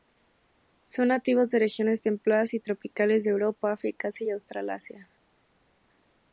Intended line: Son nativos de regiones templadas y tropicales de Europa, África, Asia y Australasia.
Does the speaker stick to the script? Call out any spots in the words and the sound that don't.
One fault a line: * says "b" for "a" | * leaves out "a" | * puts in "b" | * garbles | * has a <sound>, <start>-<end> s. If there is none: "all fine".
all fine